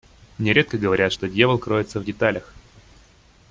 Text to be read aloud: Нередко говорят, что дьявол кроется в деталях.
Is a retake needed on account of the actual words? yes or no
no